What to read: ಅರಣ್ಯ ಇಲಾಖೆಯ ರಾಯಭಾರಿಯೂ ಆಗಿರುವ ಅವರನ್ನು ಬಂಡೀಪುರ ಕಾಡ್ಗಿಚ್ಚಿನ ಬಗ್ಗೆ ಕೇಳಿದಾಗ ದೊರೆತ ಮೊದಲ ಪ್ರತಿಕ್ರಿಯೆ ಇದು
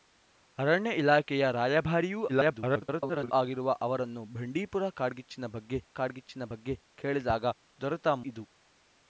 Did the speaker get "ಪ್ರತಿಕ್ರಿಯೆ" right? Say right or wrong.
wrong